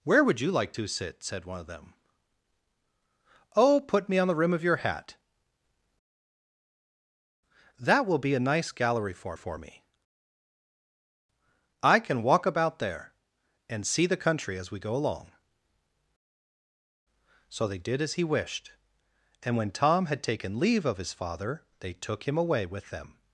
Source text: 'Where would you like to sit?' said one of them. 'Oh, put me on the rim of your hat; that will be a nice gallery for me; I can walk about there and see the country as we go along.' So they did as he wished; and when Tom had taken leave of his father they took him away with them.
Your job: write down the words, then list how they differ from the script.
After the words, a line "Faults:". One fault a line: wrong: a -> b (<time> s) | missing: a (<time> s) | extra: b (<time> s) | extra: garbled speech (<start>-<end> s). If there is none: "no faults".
'Where would you like to sit?' said one of them. 'Oh, put me on the rim of your hat; that will be a nice gallery for for me; I can walk about there and see the country as we go along.' So they did as he wished; and when Tom had taken leave of his father they took him away with them.
Faults:
extra: for (9.3 s)